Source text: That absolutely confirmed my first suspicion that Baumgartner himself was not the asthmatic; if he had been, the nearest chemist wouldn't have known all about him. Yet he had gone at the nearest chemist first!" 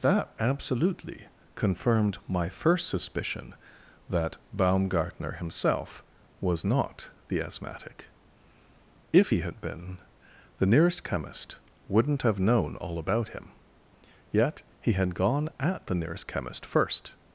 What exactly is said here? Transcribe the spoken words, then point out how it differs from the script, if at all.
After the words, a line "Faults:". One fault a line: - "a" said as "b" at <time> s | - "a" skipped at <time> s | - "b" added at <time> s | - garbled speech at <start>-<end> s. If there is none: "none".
That absolutely confirmed my first suspicion that Baumgartner himself was not the asthmatic; if he had been, the nearest chemist wouldn't have known all about him. Yet he had gone at the nearest chemist first!"
Faults:
none